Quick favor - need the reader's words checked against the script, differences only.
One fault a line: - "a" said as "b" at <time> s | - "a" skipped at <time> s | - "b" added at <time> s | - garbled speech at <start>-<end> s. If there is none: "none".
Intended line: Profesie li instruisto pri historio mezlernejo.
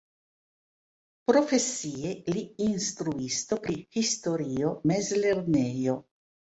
none